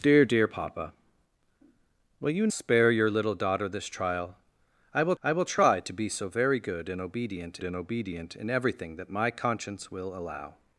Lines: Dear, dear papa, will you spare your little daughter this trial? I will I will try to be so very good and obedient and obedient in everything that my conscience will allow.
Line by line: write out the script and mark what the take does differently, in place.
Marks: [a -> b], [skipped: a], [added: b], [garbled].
Dear, dear papa, will you spare your little daughter this trial? I will I will try to be so very good and obedient and obedient in everything that my conscience will allow.